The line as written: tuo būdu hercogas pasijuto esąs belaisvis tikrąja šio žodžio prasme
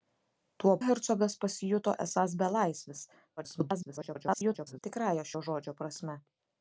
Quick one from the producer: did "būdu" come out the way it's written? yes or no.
no